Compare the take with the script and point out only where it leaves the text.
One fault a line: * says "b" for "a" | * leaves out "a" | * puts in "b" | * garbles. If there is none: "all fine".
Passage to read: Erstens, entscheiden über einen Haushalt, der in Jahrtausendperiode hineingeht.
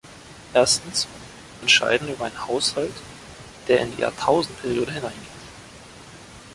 all fine